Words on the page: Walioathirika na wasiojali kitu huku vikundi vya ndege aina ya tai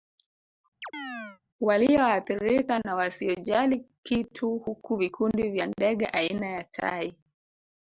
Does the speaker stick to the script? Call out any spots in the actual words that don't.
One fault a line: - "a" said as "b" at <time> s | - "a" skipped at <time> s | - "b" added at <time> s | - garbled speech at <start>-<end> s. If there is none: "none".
none